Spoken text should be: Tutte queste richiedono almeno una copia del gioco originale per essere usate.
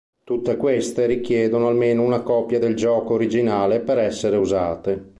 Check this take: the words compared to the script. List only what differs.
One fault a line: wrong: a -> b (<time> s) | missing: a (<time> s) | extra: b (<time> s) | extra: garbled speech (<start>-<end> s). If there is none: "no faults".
no faults